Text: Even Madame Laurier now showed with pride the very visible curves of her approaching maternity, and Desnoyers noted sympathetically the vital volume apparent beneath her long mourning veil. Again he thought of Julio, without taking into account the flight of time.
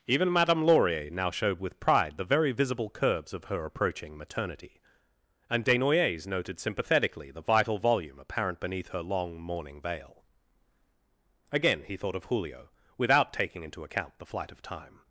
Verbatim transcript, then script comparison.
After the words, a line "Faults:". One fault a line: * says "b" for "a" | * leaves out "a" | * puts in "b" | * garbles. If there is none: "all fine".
Even Madame Laurier now showed with pride the very visible curves of her approaching maternity, and Desnoyers noted sympathetically the vital volume apparent beneath her long mourning veil. Again he thought of Julio, without taking into account the flight of time.
Faults:
all fine